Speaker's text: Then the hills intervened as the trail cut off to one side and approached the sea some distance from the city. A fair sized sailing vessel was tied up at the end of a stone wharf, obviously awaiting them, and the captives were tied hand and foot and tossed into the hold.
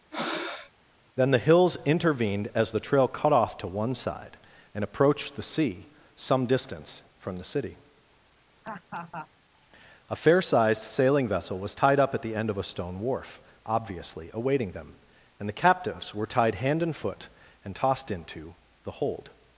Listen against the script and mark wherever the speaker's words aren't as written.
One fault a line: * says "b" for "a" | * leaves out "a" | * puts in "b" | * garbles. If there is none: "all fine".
all fine